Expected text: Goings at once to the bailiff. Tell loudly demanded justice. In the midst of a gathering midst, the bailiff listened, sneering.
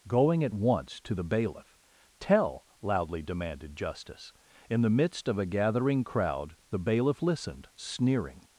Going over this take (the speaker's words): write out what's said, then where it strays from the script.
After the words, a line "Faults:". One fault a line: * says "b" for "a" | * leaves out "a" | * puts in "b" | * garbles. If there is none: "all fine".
Going at once to the bailiff. Tell loudly demanded justice. In the midst of a gathering crowd, the bailiff listened, sneering.
Faults:
* says "Going" for "Goings"
* says "crowd" for "midst"